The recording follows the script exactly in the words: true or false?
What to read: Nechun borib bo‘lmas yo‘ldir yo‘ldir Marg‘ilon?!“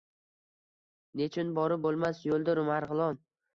false